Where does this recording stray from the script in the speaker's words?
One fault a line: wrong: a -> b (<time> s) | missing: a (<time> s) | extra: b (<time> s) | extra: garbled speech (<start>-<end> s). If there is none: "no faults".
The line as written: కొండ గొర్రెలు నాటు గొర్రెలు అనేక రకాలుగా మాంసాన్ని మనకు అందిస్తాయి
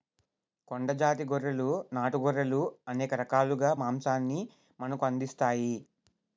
extra: జాతి (1.0 s)